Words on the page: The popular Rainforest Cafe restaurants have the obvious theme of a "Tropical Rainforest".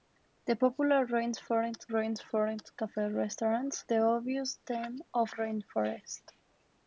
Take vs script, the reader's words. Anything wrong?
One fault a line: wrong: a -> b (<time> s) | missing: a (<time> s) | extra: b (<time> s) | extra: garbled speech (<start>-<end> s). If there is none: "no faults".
extra: Rainforest (1.9 s)
missing: have (3.8 s)
missing: a Tropical (5.3 s)